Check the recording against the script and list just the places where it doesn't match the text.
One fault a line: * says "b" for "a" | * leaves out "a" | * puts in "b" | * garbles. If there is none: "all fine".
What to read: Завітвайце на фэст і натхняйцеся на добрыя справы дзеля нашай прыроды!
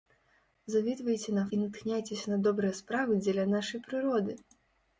* leaves out "фэст"